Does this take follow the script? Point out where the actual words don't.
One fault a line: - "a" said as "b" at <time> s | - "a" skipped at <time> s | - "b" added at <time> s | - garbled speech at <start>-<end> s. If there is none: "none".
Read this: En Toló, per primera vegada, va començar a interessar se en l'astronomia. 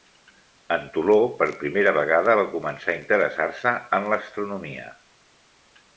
none